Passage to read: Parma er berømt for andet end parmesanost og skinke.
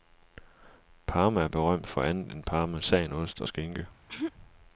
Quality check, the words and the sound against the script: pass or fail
fail